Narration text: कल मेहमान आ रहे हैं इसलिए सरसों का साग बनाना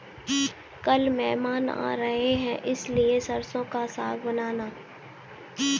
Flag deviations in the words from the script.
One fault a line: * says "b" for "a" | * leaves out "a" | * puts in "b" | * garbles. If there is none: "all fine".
all fine